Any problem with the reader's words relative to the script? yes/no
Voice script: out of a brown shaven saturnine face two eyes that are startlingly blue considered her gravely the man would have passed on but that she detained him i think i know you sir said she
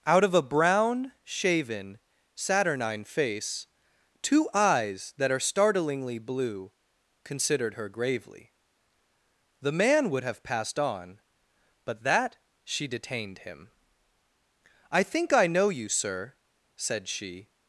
no